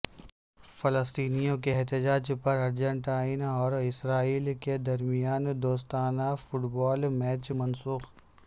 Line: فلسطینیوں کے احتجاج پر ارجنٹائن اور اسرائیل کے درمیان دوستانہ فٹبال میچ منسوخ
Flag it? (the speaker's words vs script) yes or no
no